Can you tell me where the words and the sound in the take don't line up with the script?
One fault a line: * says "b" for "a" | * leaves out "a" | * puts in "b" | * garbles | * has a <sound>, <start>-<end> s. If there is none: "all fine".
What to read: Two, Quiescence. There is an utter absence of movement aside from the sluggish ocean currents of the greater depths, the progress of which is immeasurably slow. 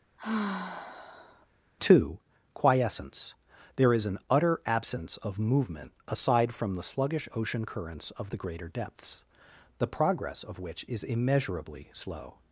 * has a sigh, 0.2-1.5 s